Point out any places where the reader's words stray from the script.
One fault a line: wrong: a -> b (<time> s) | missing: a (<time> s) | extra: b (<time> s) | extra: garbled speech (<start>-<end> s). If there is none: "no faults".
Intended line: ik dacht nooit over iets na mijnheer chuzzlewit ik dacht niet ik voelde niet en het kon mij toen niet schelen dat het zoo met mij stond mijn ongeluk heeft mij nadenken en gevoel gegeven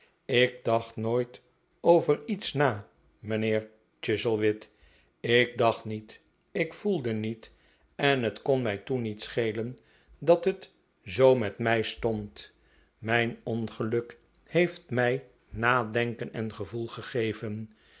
no faults